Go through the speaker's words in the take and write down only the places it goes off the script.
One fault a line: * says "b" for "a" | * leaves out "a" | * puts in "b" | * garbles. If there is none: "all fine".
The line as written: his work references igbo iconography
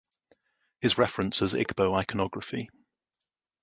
* leaves out "work"